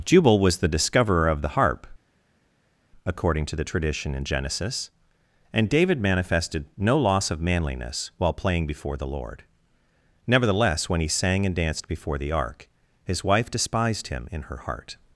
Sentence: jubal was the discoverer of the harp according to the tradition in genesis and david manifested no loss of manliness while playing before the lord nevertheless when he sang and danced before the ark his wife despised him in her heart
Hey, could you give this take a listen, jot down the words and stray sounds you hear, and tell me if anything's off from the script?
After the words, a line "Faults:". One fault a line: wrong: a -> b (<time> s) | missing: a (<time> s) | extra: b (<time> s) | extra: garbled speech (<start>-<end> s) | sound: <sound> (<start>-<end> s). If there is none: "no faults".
jubal was the discoverer of the harp according to the tradition in genesis and david manifested no loss of manliness while playing before the lord nevertheless when he sang and danced before the ark his wife despised him in her heart
Faults:
no faults